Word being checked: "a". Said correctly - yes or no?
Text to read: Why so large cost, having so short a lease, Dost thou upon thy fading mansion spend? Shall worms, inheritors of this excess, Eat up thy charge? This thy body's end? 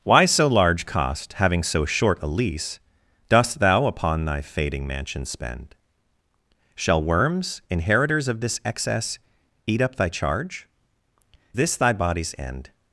yes